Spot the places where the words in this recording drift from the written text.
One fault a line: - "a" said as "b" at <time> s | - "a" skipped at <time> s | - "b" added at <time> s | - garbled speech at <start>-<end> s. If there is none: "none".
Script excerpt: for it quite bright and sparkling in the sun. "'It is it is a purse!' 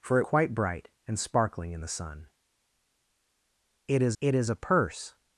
none